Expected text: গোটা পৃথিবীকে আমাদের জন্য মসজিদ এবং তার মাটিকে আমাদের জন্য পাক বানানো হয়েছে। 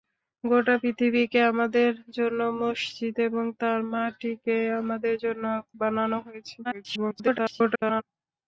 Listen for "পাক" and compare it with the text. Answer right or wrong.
wrong